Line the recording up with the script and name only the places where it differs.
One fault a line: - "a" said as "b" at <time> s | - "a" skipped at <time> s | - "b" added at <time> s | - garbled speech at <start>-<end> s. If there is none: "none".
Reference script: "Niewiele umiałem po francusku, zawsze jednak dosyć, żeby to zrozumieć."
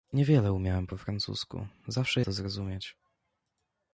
- "jednak dosyć żeby" skipped at 2.2 s